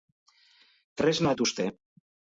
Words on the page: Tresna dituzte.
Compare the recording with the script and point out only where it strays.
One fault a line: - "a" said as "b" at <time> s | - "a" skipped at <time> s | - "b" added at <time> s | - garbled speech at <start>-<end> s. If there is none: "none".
none